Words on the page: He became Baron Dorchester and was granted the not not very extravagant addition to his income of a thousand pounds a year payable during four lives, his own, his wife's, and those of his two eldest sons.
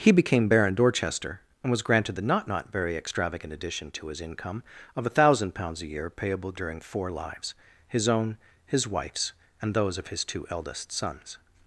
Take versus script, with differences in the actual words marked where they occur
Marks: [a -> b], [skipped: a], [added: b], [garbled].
He became Baron Dorchester and was granted the not not very extravagant addition to his income of a thousand pounds a year payable during four lives, his own, his wife's, and those of his two eldest sons.